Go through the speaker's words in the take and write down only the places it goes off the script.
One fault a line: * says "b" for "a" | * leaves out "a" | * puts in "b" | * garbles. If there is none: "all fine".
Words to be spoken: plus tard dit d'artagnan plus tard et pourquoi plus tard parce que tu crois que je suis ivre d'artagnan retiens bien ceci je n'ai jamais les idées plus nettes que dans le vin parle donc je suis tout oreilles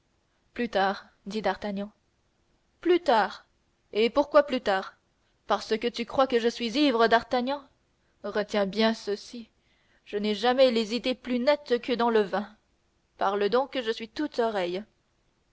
all fine